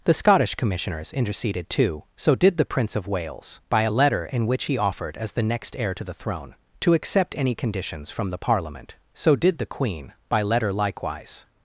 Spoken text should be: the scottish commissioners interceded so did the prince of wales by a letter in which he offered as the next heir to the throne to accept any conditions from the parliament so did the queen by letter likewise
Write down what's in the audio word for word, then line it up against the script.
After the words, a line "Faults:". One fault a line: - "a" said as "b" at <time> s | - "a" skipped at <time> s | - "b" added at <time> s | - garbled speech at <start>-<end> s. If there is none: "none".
the scottish commissioners interceded too so did the prince of wales by a letter in which he offered as the next heir to the throne to accept any conditions from the parliament so did the queen by letter likewise
Faults:
- "too" added at 1.7 s